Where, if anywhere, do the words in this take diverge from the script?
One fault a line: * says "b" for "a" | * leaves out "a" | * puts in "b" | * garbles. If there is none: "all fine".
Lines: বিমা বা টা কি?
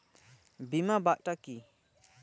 all fine